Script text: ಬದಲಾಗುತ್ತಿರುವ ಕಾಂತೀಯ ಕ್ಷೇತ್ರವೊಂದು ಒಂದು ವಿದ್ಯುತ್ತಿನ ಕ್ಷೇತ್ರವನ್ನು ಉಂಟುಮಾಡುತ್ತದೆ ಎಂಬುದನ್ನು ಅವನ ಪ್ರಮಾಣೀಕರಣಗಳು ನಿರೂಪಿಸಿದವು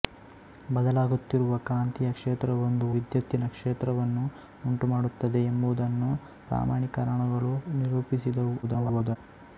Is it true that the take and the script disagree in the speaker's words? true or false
true